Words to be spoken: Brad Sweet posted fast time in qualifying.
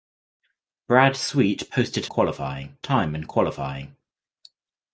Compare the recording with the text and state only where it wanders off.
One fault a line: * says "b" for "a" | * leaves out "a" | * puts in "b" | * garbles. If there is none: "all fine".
* says "qualifying" for "fast"